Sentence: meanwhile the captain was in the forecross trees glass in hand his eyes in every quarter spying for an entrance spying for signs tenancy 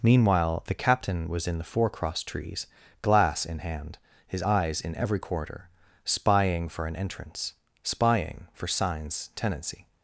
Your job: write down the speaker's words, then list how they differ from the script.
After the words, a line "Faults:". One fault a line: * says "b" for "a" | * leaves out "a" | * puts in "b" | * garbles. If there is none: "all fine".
meanwhile the captain was in the forecross trees glass in hand his eyes in every quarter spying for an entrance spying for signs tenancy
Faults:
all fine